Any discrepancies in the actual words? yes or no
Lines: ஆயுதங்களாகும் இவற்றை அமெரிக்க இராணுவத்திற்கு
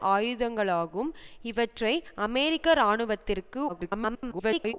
yes